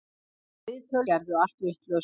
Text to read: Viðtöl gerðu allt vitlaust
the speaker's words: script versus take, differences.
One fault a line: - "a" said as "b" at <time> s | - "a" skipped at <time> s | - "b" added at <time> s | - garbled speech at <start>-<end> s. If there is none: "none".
none